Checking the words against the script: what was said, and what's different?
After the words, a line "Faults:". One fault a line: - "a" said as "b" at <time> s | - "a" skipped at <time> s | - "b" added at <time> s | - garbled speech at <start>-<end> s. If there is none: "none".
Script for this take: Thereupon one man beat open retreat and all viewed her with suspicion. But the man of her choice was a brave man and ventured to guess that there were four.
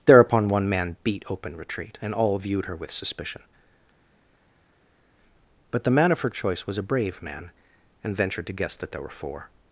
Thereupon one man beat open retreat and all viewed her with suspicion. But the man of her choice was a brave man and ventured to guess that there were four.
Faults:
none